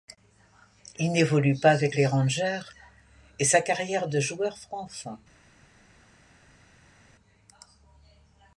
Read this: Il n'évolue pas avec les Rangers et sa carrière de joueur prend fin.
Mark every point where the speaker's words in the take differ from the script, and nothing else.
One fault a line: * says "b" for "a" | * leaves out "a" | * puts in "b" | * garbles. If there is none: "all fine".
all fine